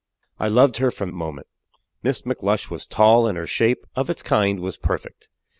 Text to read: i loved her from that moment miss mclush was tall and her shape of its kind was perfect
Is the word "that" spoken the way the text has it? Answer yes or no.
no